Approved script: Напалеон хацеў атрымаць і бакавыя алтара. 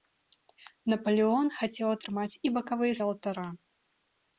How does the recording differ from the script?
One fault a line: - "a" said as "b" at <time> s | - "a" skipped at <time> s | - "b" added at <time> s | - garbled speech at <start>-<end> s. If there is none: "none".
none